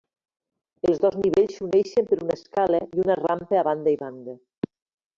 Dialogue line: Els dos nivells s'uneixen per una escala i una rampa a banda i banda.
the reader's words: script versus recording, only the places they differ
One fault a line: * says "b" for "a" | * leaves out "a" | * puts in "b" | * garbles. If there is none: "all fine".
all fine